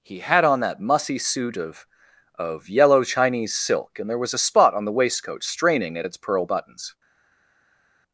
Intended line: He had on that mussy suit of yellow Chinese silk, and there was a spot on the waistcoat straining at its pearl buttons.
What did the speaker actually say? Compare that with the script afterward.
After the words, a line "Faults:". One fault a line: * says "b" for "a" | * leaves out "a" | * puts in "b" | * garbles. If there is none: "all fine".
He had on that mussy suit of of yellow Chinese silk, and there was a spot on the waistcoat straining at its pearl buttons.
Faults:
* puts in "of"